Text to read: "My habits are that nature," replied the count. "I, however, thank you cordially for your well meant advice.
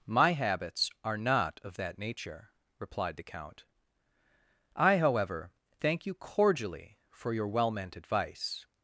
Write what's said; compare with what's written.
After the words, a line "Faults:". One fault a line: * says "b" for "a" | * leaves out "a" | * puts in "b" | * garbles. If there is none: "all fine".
"My habits are not of that nature," replied the count. "I, however, thank you cordially for your well meant advice.
Faults:
* puts in "not of"